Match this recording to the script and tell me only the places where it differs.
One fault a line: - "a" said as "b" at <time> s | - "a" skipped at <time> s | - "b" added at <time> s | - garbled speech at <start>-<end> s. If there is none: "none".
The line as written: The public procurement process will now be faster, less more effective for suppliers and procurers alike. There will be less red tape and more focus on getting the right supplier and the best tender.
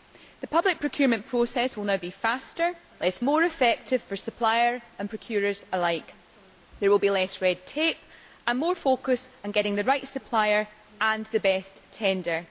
none